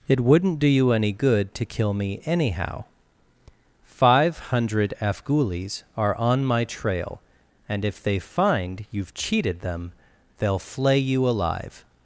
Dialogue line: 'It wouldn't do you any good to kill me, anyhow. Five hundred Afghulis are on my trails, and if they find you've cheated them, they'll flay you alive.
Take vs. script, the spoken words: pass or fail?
fail